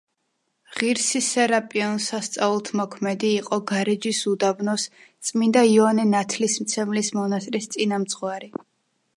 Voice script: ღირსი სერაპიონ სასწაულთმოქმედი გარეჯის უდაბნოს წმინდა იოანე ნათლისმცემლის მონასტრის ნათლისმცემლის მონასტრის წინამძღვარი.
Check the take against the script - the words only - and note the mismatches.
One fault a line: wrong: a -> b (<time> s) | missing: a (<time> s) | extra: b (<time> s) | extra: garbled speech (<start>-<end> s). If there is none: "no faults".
extra: იყო (3.4 s)
missing: ნათლისმცემლის მონასტრის (7.7 s)